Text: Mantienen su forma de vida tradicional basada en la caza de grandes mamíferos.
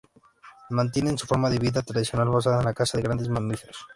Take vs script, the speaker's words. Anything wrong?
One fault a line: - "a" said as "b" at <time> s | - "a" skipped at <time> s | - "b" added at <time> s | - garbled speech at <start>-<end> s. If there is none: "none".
none